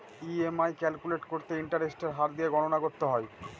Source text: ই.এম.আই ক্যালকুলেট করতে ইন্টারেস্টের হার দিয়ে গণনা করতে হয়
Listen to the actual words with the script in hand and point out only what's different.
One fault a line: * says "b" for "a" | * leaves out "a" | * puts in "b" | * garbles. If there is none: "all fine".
all fine